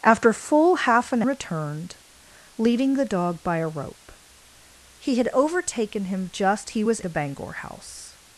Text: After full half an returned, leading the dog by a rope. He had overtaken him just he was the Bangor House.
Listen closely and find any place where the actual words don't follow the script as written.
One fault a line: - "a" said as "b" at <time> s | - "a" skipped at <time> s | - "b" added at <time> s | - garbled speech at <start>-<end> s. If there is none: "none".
none